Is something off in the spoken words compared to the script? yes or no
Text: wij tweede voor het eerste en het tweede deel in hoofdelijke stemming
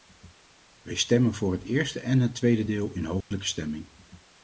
yes